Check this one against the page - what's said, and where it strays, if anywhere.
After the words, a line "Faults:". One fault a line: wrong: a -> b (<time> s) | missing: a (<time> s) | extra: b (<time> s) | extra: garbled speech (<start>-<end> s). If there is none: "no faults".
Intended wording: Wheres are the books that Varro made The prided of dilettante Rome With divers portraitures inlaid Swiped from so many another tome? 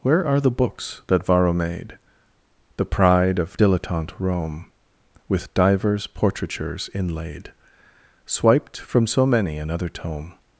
Where are the books that Varro made The pride of dilettante Rome With divers portraitures inlaid Swiped from so many another tome?
Faults:
wrong: Wheres -> Where (0.0 s)
wrong: prided -> pride (2.8 s)